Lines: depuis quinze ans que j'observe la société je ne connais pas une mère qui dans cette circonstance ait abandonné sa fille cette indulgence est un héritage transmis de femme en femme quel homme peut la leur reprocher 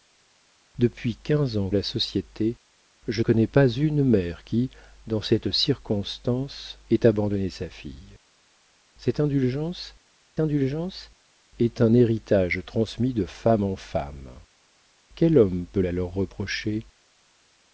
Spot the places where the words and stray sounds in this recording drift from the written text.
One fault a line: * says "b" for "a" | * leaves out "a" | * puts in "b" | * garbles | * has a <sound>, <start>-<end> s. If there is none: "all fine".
* leaves out "que j'observe"
* leaves out "ne"
* puts in "indulgence"